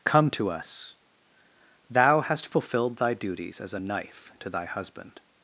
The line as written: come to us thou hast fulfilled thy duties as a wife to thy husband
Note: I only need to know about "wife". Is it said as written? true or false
false